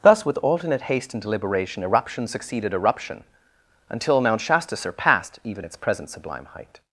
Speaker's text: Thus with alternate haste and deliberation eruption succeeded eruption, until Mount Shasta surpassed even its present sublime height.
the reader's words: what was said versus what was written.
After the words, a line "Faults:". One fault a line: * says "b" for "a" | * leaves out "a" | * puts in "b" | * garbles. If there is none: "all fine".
Thus with alternate haste and deliberation eruption succeeded eruption, until Mount Shasta surpassed even its present sublime height.
Faults:
all fine